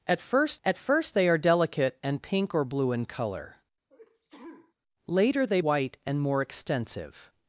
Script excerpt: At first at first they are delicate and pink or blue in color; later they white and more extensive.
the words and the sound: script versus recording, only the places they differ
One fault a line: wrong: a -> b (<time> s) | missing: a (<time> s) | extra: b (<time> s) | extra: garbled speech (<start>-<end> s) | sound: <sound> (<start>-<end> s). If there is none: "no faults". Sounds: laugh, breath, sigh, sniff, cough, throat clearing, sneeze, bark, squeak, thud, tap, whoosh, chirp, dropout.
sound: sneeze (3.9-4.7 s)